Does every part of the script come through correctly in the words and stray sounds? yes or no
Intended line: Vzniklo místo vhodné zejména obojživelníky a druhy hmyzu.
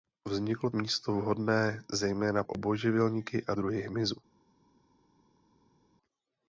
yes